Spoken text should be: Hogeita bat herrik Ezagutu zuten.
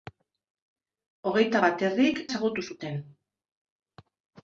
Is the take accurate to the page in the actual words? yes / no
yes